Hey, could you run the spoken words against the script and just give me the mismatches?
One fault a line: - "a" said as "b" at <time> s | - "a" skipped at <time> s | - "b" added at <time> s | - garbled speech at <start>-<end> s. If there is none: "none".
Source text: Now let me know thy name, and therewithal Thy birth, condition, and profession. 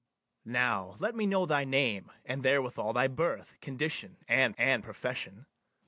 - "and" added at 4.6 s